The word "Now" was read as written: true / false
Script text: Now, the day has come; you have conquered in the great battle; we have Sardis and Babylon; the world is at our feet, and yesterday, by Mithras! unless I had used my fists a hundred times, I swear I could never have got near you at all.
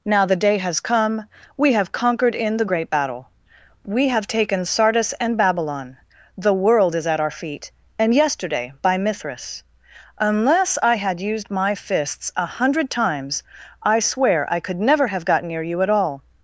true